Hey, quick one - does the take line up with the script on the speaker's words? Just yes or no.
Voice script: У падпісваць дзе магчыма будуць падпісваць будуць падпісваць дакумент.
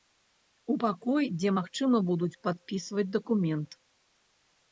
no